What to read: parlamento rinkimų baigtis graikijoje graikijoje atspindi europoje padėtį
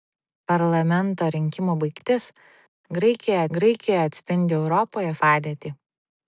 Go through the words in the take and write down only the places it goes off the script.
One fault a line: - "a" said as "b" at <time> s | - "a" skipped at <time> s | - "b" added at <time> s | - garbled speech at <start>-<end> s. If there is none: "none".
none